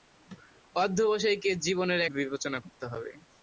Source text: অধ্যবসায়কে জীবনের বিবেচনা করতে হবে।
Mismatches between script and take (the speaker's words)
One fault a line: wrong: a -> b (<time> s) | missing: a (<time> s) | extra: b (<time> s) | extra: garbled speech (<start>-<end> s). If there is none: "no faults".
no faults